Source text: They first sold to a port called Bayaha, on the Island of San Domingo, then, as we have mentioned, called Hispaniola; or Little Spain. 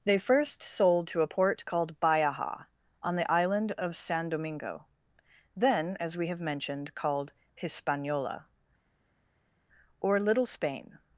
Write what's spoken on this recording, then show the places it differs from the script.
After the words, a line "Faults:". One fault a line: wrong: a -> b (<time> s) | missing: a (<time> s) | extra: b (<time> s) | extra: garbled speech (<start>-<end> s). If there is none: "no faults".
They first sold to a port called Bayaha, on the Island of San Domingo, then, as we have mentioned, called Hispaniola; or Little Spain.
Faults:
no faults